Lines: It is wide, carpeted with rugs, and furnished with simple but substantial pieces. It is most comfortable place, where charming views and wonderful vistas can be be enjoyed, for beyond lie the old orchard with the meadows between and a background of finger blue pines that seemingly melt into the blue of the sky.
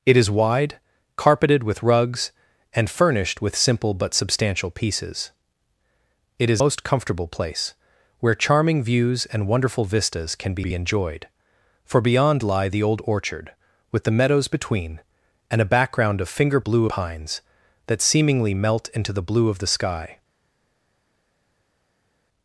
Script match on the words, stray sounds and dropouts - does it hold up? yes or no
yes